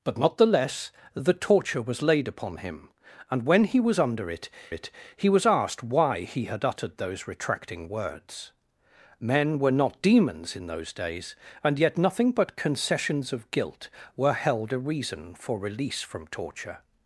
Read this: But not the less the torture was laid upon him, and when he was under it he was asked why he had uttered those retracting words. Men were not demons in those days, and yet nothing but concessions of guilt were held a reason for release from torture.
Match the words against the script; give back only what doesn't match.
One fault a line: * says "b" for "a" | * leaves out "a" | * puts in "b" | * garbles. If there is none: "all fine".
* puts in "it"